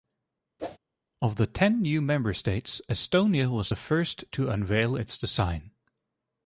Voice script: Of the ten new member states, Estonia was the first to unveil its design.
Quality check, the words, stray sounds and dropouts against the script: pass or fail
fail